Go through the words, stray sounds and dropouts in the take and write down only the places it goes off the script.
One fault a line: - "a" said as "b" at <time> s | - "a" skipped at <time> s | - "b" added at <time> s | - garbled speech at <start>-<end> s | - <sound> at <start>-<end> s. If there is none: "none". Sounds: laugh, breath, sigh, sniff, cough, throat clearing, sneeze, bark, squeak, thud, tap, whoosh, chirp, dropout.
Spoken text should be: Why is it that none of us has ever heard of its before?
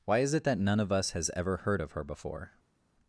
- "its" said as "her" at 1.9 s